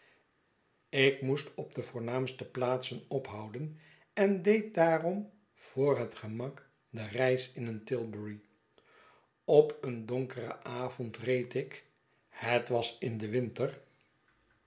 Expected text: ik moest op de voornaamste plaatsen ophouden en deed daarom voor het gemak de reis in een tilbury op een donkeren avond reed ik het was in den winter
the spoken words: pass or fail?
pass